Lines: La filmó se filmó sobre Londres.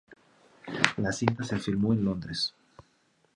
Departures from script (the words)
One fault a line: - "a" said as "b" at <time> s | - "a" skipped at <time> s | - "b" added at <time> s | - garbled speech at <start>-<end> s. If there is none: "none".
- "filmó" said as "cinta" at 1.1 s
- "sobre" said as "en" at 1.9 s